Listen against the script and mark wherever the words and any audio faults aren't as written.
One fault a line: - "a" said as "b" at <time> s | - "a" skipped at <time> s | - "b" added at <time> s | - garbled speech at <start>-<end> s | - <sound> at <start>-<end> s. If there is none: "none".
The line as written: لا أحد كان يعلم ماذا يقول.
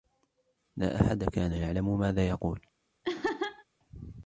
- laugh at 3.0-3.6 s